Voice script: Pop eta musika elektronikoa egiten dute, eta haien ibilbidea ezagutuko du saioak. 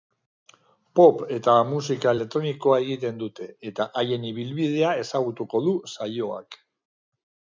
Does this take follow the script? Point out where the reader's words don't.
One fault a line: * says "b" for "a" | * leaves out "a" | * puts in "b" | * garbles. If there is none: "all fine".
all fine